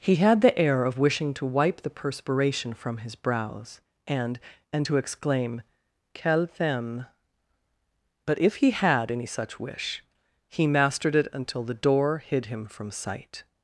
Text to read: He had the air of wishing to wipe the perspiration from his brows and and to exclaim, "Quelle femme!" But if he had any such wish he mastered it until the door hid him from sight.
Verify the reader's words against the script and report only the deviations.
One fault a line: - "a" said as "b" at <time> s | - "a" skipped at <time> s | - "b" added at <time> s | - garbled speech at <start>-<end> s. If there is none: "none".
none